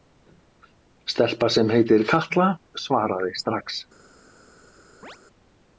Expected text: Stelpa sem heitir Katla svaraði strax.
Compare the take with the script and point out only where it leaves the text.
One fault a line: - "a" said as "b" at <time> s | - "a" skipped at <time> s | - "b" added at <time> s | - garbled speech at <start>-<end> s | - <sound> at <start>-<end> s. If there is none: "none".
- chirp at 5.0-5.2 s